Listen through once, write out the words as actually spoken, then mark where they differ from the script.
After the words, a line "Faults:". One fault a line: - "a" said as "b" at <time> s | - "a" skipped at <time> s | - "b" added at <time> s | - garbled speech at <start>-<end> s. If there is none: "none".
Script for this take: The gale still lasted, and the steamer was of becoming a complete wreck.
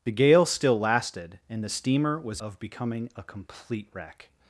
The gale still lasted, and the steamer was of becoming a complete wreck.
Faults:
none